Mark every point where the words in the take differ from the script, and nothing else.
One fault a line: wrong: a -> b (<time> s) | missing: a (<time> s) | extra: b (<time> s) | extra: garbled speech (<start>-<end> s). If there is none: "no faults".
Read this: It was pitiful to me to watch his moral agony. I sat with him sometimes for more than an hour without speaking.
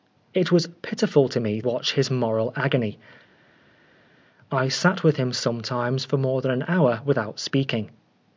missing: to (1.6 s)